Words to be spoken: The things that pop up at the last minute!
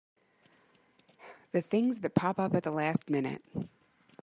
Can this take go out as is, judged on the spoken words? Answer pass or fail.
pass